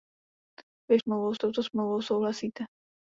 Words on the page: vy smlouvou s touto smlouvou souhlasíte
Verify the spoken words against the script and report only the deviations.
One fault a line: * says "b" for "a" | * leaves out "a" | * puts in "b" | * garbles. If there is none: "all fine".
all fine